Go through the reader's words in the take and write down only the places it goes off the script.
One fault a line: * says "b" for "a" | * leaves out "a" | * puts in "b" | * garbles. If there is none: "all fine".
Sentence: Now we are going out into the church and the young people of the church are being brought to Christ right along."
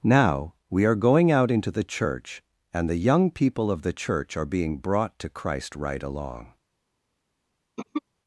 all fine